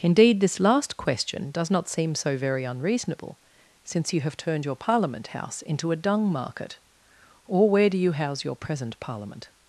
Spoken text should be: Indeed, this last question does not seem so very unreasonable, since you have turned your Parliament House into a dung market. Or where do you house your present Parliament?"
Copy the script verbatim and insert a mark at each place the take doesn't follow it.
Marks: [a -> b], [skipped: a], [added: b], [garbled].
Indeed, this last question does not seem so very unreasonable, since you have turned your Parliament House into a dung market. Or where do you house your present Parliament?"